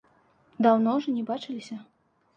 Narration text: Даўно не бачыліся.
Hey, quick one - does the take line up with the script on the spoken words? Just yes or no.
no